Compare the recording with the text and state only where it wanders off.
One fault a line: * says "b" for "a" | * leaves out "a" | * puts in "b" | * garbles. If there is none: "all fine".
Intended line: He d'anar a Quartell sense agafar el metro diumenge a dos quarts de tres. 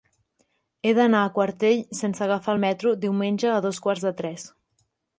all fine